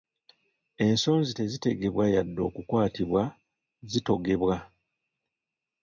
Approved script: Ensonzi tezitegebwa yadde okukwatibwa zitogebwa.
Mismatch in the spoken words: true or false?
false